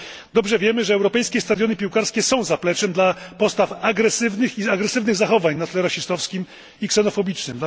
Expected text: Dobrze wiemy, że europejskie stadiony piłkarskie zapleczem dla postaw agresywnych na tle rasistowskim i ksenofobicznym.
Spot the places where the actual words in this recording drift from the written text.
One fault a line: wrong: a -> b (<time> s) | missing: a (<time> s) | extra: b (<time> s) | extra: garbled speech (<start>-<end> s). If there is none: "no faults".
extra: są (2.2 s)
extra: i agresywnych zachowań (4.6 s)